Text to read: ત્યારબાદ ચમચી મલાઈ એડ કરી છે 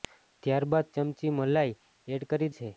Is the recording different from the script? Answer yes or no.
no